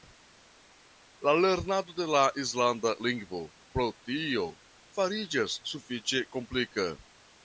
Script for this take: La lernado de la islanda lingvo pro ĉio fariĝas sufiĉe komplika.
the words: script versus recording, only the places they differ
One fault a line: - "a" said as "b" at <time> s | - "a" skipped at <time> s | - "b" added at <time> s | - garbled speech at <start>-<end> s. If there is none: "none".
- "ĉio" said as "tio" at 4.1 s